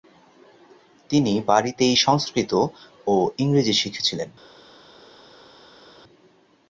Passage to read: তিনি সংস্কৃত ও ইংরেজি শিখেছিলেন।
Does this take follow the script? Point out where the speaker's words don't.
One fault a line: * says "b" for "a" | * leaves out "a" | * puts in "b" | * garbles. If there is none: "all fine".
* puts in "বাড়িতেই"